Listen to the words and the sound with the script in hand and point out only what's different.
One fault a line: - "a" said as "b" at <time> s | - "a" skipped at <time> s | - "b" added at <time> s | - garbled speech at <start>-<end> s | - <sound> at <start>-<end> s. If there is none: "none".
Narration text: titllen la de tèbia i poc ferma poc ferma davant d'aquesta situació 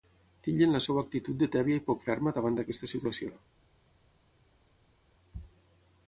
- "seva actitud" added at 0.8 s
- "poc ferma" skipped at 2.4 s